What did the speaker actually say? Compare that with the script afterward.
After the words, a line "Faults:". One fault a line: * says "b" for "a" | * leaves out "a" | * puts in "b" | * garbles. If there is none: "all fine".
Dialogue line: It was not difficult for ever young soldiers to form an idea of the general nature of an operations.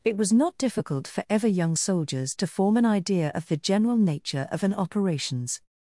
It was not difficult for ever young soldiers to form an idea of the general nature of an operations.
Faults:
all fine